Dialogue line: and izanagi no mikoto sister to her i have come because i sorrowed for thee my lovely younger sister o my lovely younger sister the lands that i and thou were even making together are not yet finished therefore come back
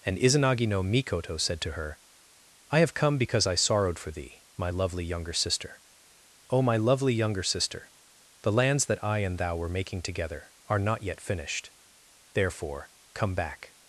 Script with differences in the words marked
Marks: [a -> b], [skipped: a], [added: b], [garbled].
and izanagi no mikoto [sister -> said] to her i have come because i sorrowed for thee my lovely younger sister o my lovely younger sister the lands that i and thou were [skipped: even] making together are not yet finished therefore come back